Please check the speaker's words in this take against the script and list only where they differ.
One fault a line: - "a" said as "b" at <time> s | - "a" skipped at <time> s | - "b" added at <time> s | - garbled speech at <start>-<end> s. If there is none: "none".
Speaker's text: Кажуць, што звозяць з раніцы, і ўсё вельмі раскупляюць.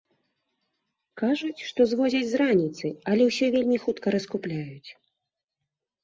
- "і" said as "але" at 3.1 s
- "хутка" added at 3.8 s